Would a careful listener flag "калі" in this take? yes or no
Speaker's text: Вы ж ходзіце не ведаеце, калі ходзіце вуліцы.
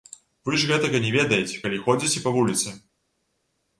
no